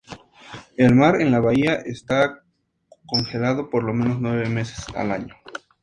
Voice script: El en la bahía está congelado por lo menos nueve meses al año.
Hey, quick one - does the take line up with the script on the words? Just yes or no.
no